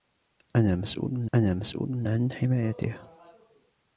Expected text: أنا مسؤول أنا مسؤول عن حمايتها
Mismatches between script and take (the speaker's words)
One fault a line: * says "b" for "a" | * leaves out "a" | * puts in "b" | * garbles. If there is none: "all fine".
all fine